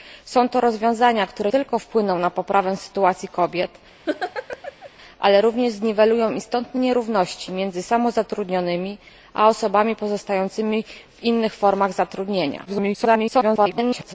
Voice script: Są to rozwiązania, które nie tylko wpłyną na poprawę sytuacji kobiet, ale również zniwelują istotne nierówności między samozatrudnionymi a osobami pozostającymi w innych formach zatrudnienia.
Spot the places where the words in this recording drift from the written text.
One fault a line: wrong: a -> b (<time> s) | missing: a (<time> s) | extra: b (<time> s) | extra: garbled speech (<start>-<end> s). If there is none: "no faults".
missing: nie (1.5 s)
extra: garbled speech (12.7-14.1 s)